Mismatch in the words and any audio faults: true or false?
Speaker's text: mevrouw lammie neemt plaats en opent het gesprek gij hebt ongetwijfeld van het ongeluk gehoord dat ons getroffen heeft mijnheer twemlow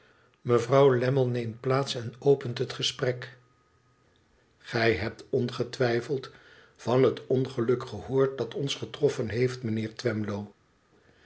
false